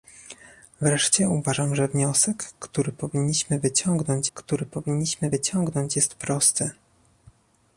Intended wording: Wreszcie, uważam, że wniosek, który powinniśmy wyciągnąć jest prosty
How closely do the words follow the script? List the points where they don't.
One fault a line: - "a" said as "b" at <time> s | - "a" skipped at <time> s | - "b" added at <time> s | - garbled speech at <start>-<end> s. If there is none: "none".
- "który powinniśmy wyciągnąć" added at 4.3 s